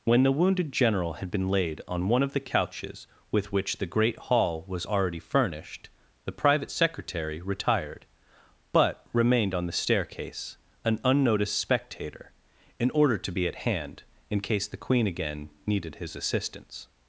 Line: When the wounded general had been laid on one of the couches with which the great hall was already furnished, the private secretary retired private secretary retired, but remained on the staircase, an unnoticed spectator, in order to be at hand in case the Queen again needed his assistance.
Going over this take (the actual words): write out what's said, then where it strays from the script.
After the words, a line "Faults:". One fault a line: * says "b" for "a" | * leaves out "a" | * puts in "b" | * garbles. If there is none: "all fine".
When the wounded general had been laid on one of the couches with which the great hall was already furnished, the private secretary retired, but remained on the staircase, an unnoticed spectator, in order to be at hand in case the Queen again needed his assistance.
Faults:
* leaves out "private secretary retired"